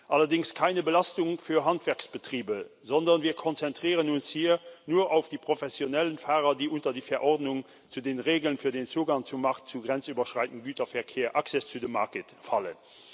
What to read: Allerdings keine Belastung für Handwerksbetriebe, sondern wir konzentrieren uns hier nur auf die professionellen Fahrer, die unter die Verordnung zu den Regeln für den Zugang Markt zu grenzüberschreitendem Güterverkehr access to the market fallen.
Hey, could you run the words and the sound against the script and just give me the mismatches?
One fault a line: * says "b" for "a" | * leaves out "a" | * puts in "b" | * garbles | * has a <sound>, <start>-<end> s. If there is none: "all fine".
* puts in "zum"